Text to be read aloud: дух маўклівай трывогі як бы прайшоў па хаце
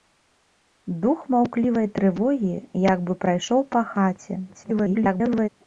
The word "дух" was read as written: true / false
true